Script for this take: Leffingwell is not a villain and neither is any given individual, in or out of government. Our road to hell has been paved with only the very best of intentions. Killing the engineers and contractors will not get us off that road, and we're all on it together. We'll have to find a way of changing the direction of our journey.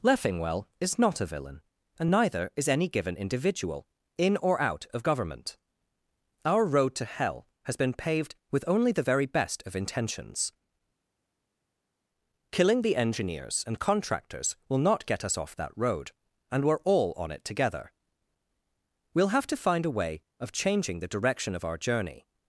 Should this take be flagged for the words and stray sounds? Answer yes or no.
no